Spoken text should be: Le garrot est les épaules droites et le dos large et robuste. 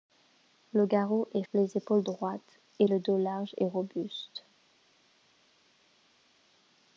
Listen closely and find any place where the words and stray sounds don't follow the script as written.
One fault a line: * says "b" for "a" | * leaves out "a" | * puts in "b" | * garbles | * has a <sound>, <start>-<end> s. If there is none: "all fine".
all fine